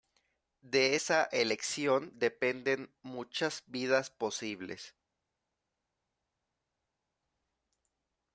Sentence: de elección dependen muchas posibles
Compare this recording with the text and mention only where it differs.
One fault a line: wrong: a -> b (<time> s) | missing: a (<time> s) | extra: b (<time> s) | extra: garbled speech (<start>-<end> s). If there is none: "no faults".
extra: esa (0.9 s)
extra: vidas (3.7 s)